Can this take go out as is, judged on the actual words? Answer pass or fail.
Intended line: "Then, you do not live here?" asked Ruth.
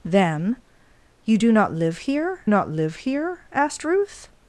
fail